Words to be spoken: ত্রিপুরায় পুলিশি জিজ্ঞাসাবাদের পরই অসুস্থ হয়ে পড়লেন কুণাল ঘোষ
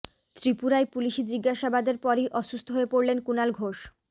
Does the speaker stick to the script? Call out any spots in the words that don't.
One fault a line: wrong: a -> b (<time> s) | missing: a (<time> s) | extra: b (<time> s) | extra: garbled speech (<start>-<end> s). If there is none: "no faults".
no faults